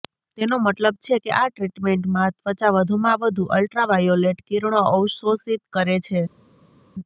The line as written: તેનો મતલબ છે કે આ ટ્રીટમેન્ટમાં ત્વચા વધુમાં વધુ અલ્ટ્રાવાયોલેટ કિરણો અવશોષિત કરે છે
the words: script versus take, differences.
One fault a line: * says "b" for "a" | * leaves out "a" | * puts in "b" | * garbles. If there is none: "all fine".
all fine